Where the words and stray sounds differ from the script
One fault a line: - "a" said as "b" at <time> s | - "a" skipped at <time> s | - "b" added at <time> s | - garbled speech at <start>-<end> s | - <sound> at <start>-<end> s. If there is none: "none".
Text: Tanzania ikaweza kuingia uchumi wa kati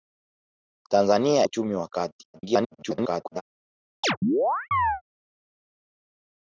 - "ikaweza kuingia" skipped at 1.5 s
- garbled speech at 2.3-3.4 s
- chirp at 4.0-5.0 s